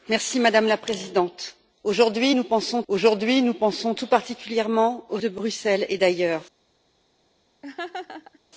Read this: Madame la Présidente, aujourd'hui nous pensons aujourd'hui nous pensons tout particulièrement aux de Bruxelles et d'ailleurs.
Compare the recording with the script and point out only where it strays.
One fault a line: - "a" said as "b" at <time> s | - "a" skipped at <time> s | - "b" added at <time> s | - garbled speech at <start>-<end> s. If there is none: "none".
none